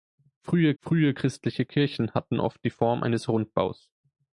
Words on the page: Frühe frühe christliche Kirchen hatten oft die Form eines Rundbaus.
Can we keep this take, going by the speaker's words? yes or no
yes